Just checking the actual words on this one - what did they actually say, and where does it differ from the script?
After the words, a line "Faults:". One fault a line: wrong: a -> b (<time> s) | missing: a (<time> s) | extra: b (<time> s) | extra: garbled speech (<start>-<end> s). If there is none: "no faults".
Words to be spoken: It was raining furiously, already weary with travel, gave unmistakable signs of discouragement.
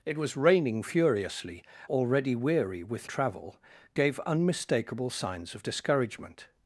It was raining furiously, already weary with travel, gave unmistakable signs of discouragement.
Faults:
no faults